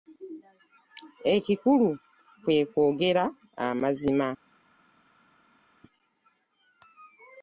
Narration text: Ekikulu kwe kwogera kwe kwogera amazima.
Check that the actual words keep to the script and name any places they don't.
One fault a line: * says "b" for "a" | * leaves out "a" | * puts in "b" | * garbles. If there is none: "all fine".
* leaves out "kwe kwogera"